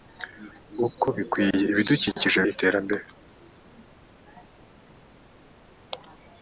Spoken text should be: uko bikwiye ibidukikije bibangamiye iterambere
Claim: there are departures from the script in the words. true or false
true